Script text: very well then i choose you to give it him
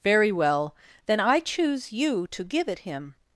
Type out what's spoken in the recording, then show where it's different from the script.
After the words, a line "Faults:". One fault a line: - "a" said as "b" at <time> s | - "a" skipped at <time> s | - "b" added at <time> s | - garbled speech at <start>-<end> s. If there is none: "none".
very well then i choose you to give it him
Faults:
none